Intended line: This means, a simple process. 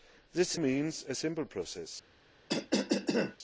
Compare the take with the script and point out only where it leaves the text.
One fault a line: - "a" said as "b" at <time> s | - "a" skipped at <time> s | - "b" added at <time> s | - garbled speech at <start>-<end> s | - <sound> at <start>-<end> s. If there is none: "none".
- cough at 2.5-3.4 s